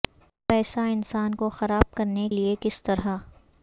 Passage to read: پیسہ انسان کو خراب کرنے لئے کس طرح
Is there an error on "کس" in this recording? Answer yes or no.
no